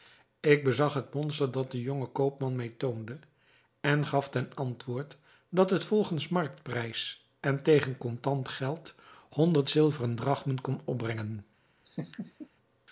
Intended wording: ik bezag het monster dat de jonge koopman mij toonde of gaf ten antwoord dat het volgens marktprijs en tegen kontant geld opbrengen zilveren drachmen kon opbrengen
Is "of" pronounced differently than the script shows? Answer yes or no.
yes